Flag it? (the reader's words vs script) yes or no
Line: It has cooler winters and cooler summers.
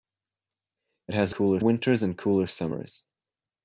no